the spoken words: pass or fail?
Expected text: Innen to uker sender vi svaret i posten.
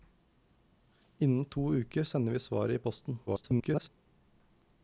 fail